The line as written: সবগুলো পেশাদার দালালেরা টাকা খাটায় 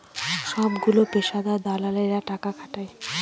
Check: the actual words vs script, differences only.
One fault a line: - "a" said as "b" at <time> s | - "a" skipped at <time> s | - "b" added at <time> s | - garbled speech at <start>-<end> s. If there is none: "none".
none